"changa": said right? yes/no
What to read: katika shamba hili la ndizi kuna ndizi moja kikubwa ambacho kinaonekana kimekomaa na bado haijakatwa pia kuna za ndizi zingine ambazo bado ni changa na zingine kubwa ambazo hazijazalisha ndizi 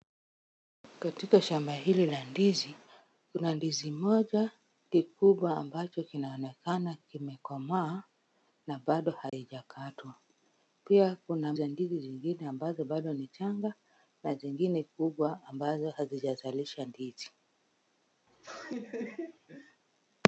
yes